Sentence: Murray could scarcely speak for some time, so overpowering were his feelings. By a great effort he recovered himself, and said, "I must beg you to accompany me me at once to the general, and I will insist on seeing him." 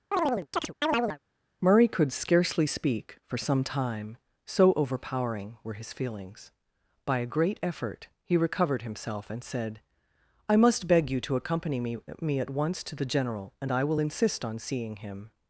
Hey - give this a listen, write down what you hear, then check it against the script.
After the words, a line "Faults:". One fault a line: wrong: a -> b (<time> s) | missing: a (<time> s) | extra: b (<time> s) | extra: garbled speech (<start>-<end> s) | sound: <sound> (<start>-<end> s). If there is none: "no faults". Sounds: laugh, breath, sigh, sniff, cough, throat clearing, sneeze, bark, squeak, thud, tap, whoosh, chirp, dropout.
Murray could scarcely speak for some time, so overpowering were his feelings. By a great effort he recovered himself, and said, "I must beg you to accompany me me at once to the general, and I will insist on seeing him."
Faults:
sound: chirp (0.1-1.2 s)